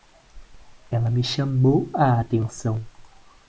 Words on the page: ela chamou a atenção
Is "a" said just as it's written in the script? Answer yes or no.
yes